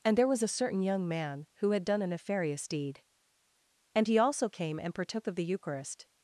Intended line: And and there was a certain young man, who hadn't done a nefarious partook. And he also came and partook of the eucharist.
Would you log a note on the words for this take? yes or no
yes